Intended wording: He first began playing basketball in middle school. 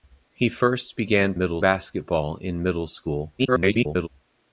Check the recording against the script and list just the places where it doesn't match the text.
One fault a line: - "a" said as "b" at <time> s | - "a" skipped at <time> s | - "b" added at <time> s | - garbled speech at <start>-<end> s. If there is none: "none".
- "playing" said as "middle" at 1.4 s
- garbled speech at 3.4-4.1 s